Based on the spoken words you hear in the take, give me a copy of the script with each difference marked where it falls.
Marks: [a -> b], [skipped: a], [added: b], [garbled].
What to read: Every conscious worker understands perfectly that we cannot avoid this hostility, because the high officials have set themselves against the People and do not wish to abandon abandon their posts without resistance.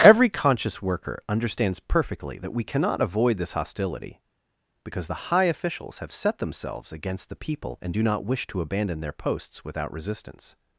Every conscious worker understands perfectly that we cannot avoid this hostility, because the high officials have set themselves against the People and do not wish to abandon [skipped: abandon] their posts without resistance.